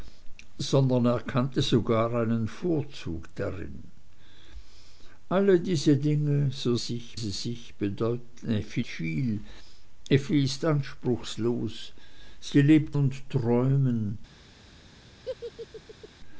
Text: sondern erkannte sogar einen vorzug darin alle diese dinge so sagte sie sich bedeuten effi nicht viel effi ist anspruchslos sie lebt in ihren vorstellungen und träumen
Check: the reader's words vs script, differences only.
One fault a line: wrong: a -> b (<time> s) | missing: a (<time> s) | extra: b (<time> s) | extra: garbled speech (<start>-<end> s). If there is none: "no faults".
wrong: sagte -> sich (6.7 s)
missing: nicht (8.8 s)
missing: in ihren vorstellungen (13.0 s)